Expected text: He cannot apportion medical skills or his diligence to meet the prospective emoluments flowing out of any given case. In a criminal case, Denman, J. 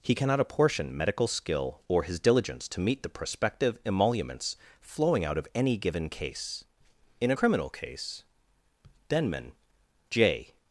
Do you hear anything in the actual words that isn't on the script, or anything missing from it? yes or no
yes